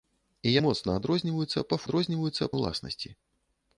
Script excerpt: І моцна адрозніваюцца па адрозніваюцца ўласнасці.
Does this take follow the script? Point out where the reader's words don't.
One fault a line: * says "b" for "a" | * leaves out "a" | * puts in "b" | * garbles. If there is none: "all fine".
all fine